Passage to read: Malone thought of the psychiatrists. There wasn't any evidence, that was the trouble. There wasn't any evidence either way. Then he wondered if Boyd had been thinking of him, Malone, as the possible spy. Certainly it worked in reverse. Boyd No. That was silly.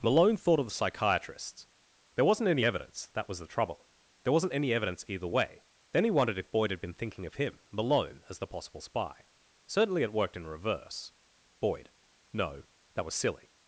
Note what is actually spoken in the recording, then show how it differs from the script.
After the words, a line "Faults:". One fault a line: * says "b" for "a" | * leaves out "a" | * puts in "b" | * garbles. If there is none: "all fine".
Malone thought of the psychiatrists. There wasn't any evidence, that was the trouble. There wasn't any evidence either way. Then he wondered if Boyd had been thinking of him, Malone, as the possible spy. Certainly it worked in reverse. Boyd No. That was silly.
Faults:
all fine